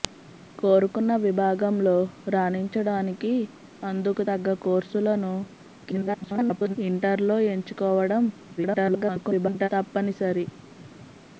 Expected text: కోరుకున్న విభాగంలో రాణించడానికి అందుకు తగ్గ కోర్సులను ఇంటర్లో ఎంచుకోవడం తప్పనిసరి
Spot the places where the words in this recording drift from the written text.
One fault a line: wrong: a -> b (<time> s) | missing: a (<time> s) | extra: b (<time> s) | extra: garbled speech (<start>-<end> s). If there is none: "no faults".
extra: garbled speech (5.9-6.8 s)
extra: garbled speech (8.6-9.7 s)